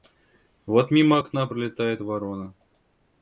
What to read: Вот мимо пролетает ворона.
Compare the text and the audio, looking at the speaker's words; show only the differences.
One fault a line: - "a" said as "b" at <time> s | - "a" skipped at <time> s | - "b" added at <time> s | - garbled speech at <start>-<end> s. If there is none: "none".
- "окна" added at 1.2 s